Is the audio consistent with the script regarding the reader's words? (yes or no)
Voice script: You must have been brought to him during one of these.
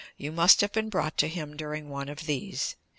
yes